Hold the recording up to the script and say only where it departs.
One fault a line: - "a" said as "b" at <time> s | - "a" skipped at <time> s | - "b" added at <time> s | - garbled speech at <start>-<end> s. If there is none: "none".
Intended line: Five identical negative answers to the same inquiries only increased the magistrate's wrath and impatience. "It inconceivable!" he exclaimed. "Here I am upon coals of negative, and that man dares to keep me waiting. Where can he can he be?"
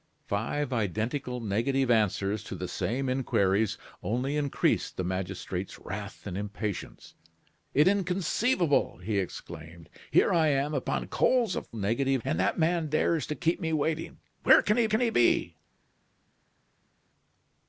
none